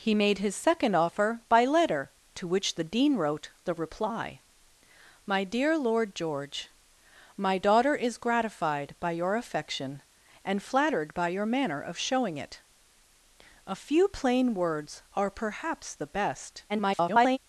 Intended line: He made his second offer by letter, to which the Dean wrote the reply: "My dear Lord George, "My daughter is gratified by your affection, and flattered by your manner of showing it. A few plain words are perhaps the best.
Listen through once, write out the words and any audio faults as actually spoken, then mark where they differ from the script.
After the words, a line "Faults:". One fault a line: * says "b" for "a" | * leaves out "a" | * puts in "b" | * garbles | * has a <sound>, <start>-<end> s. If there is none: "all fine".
He made his second offer by letter, to which the Dean wrote the reply: "My dear Lord George, "My daughter is gratified by your affection, and flattered by your manner of showing it. A few plain words are perhaps the best. [garbled]
Faults:
* garbles